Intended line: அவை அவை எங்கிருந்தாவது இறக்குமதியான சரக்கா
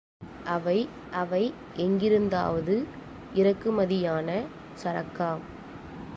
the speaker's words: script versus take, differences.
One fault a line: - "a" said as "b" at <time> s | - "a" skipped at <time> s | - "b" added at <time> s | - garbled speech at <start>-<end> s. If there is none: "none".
none